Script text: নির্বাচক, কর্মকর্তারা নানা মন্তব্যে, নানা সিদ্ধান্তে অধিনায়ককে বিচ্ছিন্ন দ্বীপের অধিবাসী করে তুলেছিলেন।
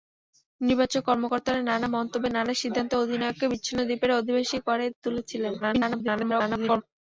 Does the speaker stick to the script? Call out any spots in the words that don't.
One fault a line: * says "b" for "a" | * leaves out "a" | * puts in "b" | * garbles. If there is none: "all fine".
* garbles